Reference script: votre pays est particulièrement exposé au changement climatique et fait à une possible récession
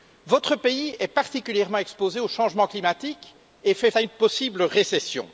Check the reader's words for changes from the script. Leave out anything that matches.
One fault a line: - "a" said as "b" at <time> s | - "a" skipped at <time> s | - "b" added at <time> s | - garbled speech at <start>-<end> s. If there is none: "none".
none